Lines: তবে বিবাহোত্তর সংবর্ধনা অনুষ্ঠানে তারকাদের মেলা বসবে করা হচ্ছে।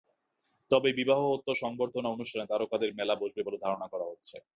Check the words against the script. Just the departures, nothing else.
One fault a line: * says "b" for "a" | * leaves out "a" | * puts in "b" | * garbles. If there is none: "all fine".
* puts in "বলে ধারণা"